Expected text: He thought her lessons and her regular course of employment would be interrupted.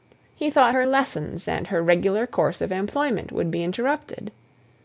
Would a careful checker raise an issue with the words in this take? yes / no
no